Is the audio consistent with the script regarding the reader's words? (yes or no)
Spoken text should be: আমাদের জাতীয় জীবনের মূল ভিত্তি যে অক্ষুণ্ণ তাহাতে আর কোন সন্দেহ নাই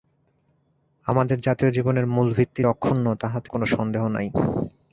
no